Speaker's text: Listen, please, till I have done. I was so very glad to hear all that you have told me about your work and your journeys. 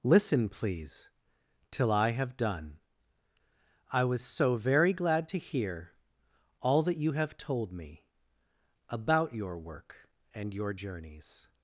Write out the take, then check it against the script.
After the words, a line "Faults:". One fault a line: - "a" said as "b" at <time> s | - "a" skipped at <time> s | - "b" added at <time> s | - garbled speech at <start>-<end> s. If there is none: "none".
Listen, please, till I have done. I was so very glad to hear all that you have told me about your work and your journeys.
Faults:
none